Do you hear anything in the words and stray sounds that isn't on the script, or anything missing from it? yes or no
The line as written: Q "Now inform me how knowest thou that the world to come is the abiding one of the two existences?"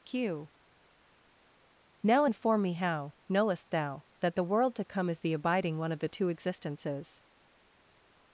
no